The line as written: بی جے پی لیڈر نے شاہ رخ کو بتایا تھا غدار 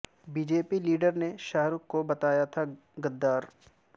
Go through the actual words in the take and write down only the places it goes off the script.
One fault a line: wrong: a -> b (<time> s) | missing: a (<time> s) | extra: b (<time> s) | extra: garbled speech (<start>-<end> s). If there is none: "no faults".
no faults